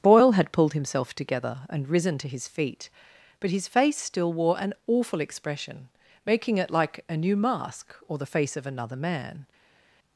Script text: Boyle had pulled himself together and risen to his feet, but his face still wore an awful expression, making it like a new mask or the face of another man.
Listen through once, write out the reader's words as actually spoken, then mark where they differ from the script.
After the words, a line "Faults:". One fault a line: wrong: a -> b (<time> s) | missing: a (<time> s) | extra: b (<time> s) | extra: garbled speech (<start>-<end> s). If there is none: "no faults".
Boyle had pulled himself together and risen to his feet, but his face still wore an awful expression, making it like a new mask or the face of another man.
Faults:
no faults